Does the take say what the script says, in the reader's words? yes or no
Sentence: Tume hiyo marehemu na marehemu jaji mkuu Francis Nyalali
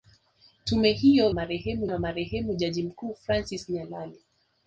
yes